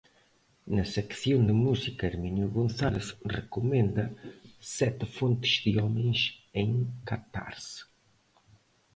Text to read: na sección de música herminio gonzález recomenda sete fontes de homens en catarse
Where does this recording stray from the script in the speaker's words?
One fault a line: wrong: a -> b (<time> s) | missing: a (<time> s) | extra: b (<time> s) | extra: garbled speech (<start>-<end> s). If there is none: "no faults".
no faults